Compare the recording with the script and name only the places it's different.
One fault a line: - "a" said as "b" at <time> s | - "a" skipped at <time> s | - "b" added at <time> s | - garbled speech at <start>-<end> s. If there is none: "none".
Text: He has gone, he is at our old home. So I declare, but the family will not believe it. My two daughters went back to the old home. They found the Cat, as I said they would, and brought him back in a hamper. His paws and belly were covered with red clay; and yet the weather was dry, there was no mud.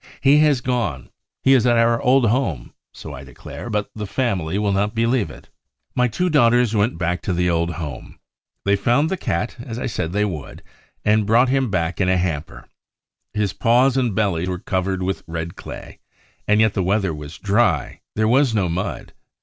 none